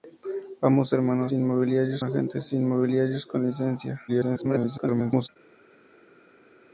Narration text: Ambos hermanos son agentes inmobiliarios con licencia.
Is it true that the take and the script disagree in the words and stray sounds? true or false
true